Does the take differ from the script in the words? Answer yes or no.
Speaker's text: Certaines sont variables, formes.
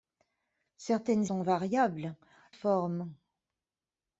no